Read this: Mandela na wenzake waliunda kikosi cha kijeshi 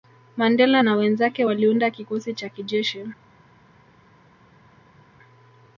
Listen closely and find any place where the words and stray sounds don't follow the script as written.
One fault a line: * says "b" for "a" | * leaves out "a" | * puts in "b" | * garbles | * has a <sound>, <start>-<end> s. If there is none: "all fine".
all fine